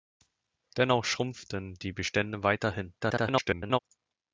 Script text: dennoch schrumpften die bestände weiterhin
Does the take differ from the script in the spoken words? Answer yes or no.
yes